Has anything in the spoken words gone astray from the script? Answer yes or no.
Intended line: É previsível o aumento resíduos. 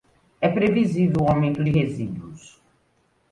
no